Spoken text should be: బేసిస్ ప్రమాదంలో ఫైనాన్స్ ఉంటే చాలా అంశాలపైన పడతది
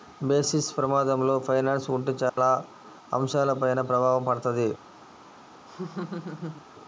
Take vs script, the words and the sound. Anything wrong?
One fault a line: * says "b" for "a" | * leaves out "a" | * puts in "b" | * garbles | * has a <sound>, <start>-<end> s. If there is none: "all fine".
* has a dropout, 2.3-2.4 s
* puts in "ప్రభావం"
* has a laugh, 5.7-6.7 s